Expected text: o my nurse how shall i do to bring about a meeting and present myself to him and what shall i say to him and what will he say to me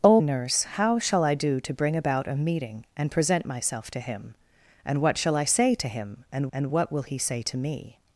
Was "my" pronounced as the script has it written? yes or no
no